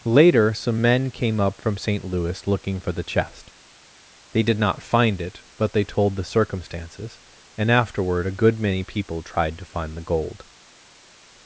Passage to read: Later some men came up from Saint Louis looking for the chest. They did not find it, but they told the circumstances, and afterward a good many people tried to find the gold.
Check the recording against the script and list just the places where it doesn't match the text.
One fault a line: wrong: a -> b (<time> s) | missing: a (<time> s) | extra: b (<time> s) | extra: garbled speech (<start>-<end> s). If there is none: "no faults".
no faults